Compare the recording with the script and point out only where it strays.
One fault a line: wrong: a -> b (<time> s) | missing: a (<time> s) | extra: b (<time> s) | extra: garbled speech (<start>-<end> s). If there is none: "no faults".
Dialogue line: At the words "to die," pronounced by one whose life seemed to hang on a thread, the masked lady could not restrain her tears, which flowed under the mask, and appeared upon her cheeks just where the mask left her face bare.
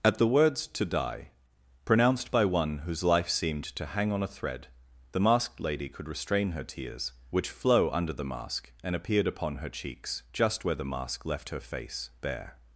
missing: not (6.1 s)
wrong: flowed -> flow (7.5 s)